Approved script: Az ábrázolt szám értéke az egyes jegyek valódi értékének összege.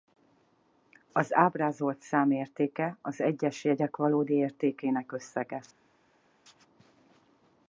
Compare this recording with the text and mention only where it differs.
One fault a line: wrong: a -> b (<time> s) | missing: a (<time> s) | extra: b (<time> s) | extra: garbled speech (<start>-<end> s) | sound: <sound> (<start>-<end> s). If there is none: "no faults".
no faults